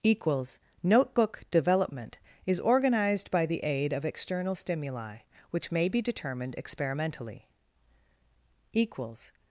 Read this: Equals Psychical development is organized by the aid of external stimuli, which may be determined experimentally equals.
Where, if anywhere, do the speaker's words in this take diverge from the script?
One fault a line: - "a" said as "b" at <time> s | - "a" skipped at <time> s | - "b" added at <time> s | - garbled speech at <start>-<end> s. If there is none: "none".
- "Psychical" said as "Notebook" at 0.8 s